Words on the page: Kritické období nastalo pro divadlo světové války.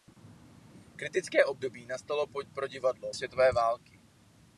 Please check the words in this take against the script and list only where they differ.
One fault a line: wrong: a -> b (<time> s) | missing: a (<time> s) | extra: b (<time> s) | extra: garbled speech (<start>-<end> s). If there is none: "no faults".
no faults